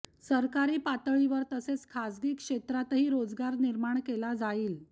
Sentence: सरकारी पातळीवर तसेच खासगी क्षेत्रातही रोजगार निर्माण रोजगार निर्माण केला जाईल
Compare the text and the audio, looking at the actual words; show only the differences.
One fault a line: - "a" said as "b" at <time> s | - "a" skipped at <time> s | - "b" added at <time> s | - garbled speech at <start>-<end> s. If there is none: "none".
- "रोजगार निर्माण" skipped at 4.0 s